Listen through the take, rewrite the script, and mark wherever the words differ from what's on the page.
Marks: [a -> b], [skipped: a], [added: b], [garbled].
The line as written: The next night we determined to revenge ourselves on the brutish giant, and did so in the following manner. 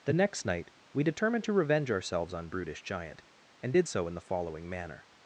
The next night we determined to revenge ourselves on [skipped: the] brutish giant, and did so in the following manner.